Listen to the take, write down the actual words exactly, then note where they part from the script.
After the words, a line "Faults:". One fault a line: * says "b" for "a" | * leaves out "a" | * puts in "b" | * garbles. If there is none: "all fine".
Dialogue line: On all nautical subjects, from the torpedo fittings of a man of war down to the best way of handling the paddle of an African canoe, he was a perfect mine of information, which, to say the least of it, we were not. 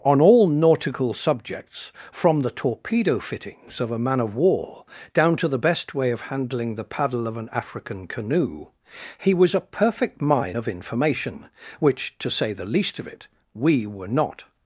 On all nautical subjects, from the torpedo fittings of a man of war down to the best way of handling the paddle of an African canoe, he was a perfect mine of information, which, to say the least of it, we were not.
Faults:
all fine